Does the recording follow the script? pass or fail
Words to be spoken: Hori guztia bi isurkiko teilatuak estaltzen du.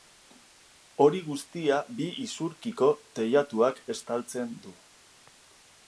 pass